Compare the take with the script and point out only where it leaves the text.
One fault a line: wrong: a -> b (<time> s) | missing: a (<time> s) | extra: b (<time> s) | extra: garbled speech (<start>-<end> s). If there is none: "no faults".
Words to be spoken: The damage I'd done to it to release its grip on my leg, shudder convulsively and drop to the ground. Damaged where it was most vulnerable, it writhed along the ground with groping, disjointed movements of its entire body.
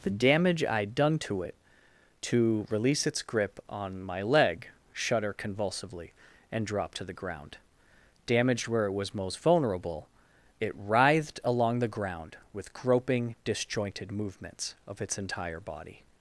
no faults